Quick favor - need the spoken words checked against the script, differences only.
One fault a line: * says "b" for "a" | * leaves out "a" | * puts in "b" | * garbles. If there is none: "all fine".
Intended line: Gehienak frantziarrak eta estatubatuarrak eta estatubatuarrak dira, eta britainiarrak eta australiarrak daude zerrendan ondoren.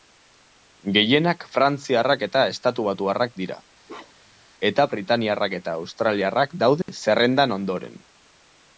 * leaves out "eta estatubatuarrak"